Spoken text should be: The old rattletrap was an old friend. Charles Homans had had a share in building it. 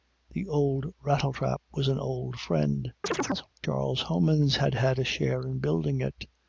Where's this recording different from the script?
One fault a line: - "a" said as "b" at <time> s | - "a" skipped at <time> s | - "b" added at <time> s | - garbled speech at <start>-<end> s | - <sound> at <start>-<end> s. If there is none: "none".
- chirp at 3.0-3.5 s